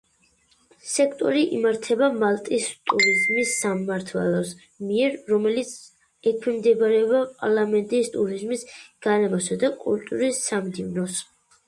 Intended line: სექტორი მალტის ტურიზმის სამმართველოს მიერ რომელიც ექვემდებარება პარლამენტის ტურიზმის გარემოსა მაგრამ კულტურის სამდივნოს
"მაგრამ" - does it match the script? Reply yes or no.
no